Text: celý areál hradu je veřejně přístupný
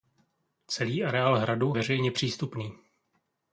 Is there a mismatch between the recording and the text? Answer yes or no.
yes